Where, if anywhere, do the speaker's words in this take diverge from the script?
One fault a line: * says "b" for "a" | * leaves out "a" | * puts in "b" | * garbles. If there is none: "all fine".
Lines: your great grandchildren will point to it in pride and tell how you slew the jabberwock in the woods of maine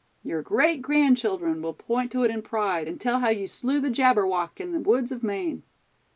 all fine